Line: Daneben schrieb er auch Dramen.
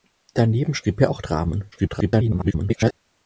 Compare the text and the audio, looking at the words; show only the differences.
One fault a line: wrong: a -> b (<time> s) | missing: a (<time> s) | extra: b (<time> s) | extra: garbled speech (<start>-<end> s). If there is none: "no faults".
extra: garbled speech (1.7-2.9 s)